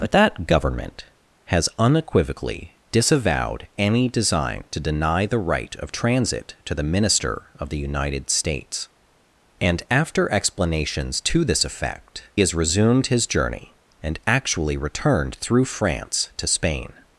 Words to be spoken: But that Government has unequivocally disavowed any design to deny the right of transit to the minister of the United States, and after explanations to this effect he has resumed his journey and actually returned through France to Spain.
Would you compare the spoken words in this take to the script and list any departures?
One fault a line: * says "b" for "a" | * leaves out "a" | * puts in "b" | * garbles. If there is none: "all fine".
* leaves out "he"